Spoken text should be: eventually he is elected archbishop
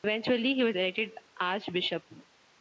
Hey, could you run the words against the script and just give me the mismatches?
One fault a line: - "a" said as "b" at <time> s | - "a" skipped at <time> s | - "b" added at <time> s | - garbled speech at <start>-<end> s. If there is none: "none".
- "is" said as "was" at 0.6 s